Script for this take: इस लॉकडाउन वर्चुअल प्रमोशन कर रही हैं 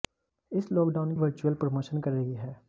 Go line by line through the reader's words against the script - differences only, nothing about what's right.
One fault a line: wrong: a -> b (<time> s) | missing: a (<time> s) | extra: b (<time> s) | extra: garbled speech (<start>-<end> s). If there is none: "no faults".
no faults